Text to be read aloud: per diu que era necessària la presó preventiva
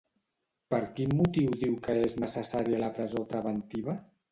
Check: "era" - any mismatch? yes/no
yes